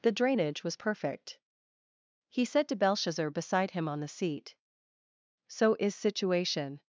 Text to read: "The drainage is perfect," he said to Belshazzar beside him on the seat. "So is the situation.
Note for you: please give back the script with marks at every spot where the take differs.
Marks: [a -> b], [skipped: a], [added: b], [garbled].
"The drainage [is -> was] perfect," he said to Belshazzar beside him on the seat. "So is [skipped: the] situation.